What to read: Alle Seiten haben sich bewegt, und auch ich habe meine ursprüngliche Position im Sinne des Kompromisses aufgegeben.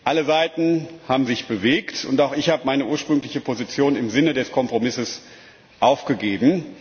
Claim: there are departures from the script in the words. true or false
false